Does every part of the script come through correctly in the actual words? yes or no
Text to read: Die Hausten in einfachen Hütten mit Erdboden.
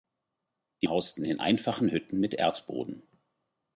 yes